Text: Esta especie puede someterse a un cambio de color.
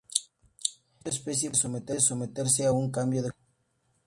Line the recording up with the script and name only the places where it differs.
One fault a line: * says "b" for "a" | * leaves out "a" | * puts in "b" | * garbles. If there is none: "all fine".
* leaves out "puede"